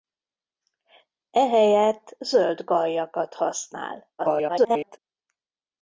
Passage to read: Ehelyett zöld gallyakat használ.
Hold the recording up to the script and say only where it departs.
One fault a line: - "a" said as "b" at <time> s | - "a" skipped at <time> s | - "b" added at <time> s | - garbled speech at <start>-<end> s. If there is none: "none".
- garbled speech at 4.2-5.0 s